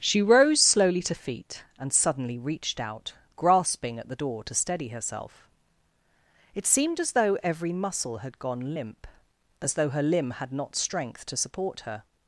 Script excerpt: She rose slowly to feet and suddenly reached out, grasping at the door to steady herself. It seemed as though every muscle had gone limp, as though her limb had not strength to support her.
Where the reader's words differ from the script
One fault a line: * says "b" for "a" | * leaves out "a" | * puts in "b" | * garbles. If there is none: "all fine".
all fine